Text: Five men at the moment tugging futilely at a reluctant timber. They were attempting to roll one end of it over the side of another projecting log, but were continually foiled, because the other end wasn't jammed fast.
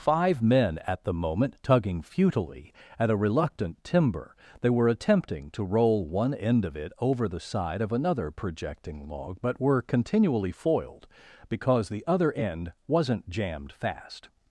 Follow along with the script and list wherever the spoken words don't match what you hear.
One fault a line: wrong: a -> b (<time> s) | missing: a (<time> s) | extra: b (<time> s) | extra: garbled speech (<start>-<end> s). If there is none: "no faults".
no faults